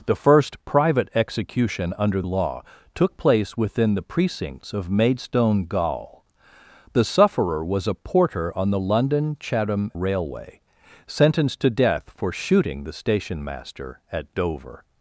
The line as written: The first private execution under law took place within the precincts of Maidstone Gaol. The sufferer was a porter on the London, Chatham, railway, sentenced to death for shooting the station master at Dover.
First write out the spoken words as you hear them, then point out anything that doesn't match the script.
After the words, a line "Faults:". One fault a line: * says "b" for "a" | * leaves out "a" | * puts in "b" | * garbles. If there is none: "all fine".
The first private execution under law took place within the precincts of Maidstone Gaol. The sufferer was a porter on the London, Chatham, railway, sentenced to death for shooting the station master at Dover.
Faults:
all fine